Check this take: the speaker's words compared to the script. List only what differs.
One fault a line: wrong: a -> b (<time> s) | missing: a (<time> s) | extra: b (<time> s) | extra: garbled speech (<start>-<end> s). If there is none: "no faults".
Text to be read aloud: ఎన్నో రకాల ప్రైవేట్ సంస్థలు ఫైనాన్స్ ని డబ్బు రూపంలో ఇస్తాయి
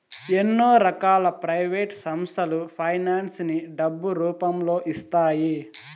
no faults